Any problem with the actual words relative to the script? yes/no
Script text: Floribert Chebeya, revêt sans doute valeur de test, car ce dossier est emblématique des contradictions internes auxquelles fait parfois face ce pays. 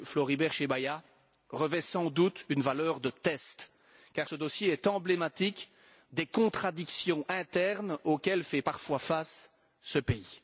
yes